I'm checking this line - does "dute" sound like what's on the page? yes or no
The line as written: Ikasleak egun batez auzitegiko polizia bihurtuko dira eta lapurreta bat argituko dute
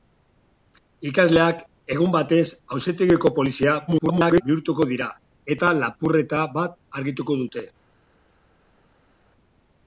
yes